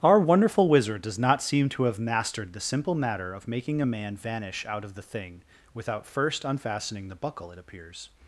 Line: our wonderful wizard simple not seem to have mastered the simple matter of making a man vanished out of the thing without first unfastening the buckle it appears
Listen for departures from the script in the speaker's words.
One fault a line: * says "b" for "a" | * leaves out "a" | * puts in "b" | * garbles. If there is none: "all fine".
* says "does" for "simple"
* says "vanish" for "vanished"